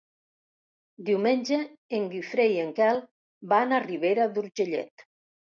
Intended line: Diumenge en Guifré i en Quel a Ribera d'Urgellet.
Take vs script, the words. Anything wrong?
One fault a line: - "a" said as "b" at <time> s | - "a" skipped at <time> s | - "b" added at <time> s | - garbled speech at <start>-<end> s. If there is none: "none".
- "van" added at 3.5 s